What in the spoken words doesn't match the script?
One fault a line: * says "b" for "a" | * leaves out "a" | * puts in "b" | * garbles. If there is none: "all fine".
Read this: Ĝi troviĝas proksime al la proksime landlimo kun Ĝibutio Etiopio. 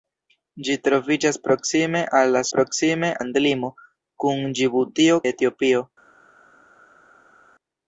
all fine